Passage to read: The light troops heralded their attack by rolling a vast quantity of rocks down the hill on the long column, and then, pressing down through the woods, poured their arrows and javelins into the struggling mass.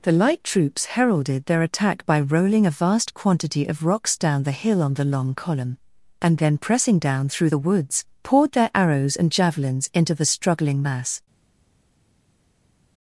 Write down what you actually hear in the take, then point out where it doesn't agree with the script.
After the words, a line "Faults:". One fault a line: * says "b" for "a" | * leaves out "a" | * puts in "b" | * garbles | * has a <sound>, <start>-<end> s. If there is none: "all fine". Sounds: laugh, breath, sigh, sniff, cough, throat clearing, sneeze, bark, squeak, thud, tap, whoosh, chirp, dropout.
The light troops heralded their attack by rolling a vast quantity of rocks down the hill on the long column, and then, pressing down through the woods, poured their arrows and javelins into the struggling mass.
Faults:
all fine